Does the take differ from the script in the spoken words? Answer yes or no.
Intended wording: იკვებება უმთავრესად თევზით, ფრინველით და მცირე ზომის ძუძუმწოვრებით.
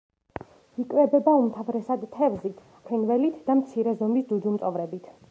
no